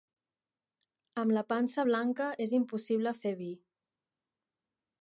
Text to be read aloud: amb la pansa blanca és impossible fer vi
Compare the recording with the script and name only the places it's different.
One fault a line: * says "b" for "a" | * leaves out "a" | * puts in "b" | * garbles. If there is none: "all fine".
all fine